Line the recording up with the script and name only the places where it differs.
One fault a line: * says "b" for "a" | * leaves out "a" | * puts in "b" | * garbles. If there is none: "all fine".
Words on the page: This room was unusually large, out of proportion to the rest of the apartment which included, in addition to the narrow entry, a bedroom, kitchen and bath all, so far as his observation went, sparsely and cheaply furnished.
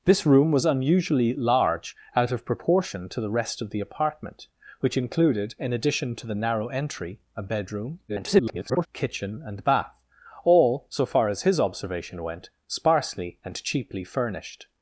* garbles